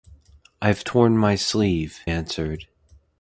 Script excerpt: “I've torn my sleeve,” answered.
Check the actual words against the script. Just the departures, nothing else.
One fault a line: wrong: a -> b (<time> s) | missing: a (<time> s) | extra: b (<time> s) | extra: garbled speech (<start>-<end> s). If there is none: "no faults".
no faults